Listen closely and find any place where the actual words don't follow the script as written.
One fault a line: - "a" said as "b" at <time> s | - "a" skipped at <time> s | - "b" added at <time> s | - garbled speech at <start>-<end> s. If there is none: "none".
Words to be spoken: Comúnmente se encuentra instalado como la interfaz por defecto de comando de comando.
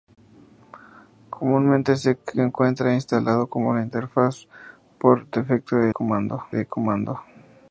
none